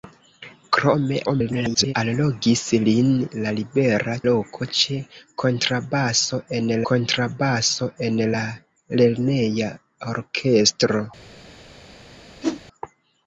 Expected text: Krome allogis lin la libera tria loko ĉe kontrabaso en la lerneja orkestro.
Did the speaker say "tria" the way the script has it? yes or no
no